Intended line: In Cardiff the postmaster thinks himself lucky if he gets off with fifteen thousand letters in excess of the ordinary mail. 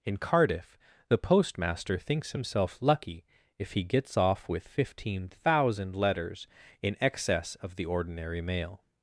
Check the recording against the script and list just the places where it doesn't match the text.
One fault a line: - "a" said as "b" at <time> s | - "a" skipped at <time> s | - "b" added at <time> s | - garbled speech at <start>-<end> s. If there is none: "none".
none